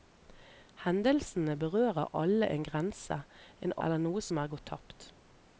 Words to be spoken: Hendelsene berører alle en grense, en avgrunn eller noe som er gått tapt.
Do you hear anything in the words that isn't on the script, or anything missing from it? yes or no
yes